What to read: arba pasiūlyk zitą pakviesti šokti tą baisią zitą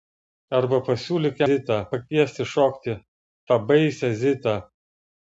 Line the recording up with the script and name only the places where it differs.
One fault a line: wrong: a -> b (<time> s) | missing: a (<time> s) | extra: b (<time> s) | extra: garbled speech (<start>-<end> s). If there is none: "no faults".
no faults